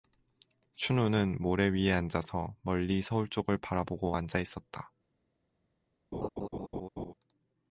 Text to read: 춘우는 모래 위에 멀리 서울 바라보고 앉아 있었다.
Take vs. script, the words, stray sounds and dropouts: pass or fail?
fail